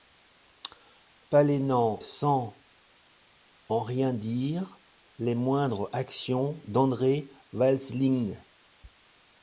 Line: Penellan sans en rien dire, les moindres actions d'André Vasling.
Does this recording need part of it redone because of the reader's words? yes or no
no